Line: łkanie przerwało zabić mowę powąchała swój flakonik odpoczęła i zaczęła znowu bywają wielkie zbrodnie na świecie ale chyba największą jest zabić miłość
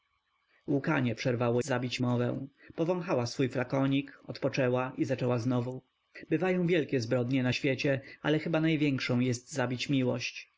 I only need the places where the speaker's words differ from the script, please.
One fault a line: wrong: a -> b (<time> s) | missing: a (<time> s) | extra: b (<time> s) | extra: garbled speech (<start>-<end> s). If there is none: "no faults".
no faults